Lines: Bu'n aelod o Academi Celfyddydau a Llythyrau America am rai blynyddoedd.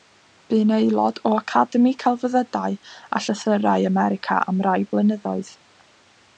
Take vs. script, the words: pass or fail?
pass